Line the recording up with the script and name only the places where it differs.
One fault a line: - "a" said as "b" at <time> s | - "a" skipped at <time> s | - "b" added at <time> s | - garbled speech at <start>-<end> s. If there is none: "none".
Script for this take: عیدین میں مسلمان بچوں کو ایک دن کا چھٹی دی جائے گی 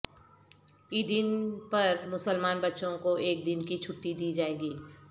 - "میں" said as "پر" at 1.7 s
- "کا" said as "کی" at 3.7 s